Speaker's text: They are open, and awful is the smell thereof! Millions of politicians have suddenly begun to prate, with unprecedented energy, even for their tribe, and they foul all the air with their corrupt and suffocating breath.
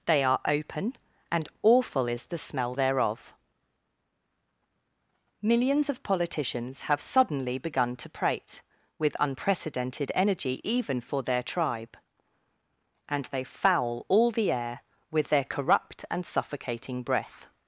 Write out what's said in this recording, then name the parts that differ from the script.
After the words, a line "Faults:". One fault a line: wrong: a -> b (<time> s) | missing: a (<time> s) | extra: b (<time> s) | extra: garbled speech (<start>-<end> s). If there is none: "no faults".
They are open, and awful is the smell thereof! Millions of politicians have suddenly begun to prate, with unprecedented energy, even for their tribe, and they foul all the air with their corrupt and suffocating breath.
Faults:
no faults